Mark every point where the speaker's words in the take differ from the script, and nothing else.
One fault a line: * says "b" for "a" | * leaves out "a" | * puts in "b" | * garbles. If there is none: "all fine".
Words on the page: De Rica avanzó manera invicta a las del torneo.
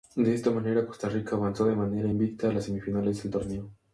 * puts in "esta manera Costa"
* puts in "de"
* puts in "semifinales"